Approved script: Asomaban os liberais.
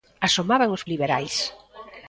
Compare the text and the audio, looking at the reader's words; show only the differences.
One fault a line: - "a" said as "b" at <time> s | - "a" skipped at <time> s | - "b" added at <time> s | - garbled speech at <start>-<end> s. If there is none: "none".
none